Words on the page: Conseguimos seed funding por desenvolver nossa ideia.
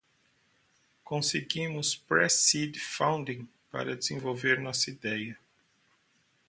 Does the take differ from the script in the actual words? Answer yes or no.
yes